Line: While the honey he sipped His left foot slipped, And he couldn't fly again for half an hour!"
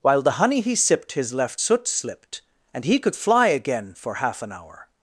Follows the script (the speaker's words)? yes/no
no